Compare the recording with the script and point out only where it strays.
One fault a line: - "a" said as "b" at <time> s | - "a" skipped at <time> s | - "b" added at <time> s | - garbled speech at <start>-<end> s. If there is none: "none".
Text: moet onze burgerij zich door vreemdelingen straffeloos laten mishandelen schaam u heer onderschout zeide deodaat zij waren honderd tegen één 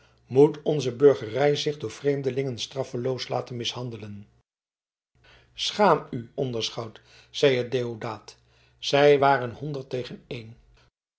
- "heer" skipped at 6.3 s